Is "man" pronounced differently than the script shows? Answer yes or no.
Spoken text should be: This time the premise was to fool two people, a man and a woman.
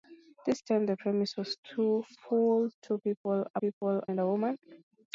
yes